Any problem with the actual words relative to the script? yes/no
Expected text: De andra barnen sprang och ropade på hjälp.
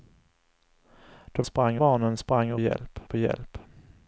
yes